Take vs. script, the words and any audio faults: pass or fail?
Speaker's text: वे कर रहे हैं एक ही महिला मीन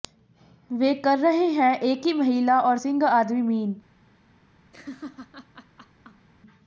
fail